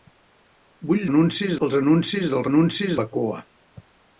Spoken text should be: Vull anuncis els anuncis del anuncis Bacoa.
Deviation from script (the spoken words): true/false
false